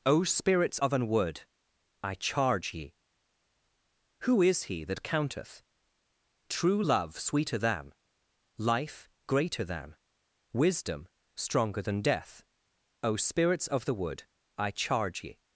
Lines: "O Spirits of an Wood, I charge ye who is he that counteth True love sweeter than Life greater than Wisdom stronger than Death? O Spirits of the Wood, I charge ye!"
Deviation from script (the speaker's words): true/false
false